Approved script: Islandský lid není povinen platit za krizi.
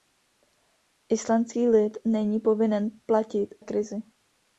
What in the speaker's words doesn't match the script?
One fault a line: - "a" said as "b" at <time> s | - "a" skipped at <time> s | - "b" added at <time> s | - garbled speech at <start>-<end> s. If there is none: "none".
- "za" skipped at 3.5 s